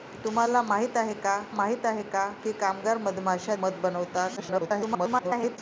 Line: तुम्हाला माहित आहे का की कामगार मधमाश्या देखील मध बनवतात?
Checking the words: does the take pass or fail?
fail